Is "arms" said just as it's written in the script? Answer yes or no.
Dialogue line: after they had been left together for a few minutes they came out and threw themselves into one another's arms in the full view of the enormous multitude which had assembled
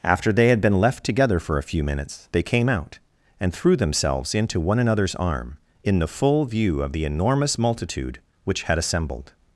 no